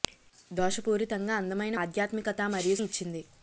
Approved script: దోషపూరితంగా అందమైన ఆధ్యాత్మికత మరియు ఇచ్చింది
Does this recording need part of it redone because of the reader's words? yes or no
no